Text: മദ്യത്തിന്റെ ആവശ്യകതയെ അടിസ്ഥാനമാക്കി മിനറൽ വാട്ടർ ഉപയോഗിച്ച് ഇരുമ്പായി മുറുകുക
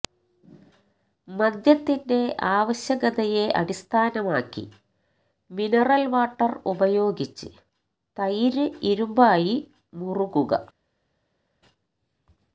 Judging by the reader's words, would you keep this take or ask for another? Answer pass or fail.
fail